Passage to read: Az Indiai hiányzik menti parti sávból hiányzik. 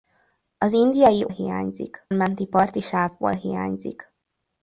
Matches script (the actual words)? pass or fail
pass